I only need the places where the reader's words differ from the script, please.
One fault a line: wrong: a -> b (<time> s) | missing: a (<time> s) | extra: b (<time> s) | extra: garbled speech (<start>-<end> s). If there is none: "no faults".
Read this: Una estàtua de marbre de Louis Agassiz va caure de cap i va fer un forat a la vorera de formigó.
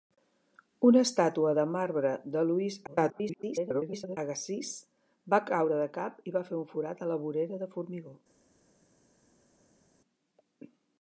extra: garbled speech (2.9-4.2 s)